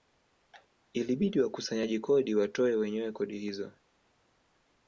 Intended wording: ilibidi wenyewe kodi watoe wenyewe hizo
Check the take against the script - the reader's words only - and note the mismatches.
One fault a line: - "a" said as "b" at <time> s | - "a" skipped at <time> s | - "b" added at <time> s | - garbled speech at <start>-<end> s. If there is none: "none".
- "wenyewe" said as "wakusanyaji" at 1.4 s
- "kodi" added at 3.1 s